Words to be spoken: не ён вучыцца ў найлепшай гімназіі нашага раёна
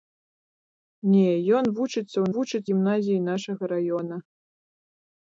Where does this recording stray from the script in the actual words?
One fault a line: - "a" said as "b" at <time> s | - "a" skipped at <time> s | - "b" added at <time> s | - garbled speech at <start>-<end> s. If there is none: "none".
- "найлепшай" said as "вучыцца" at 2.3 s